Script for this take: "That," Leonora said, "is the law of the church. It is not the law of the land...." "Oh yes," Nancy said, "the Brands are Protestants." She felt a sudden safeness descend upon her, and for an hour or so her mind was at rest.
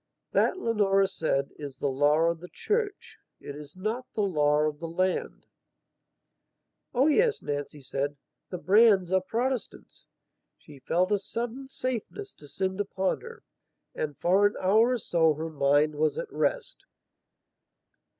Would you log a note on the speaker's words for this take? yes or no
no